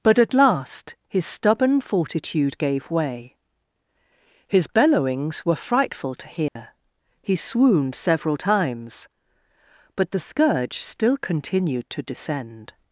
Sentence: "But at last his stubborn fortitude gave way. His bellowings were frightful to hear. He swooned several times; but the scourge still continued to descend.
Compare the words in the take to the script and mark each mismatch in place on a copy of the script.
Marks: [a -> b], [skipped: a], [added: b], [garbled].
"But at last his stubborn fortitude gave way. His bellowings were frightful to hear. He swooned several times; but the scourge still continued to descend.